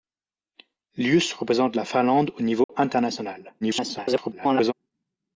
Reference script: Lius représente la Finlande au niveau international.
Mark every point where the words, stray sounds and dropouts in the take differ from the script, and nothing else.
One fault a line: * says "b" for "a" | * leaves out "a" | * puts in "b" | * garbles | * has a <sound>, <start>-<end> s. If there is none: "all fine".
* has a dropout, 2.6-2.7 s
* garbles